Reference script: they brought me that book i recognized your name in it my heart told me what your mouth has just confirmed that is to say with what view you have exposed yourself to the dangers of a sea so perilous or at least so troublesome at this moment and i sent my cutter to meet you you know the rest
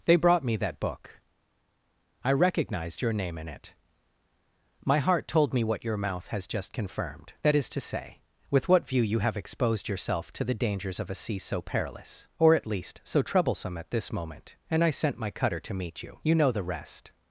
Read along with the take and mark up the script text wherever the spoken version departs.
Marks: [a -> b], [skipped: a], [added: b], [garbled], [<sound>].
they brought me that book i recognized your name in it my heart told me what your mouth has just confirmed that is to say with what view you have exposed yourself to the dangers of a sea so perilous or at least so troublesome at this moment and i sent my cutter to meet you you know the rest